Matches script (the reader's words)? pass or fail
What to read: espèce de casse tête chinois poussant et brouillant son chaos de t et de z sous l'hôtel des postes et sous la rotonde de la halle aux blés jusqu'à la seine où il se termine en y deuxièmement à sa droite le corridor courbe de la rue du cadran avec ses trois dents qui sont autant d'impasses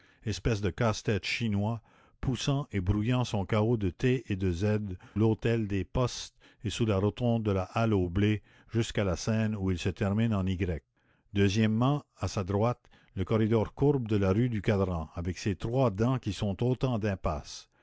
fail